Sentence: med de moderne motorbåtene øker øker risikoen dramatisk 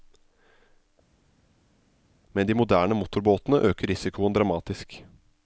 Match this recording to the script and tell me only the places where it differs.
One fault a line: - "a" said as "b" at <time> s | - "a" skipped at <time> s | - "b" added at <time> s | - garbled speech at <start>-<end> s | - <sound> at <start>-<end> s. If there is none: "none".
- "øker" skipped at 3.9 s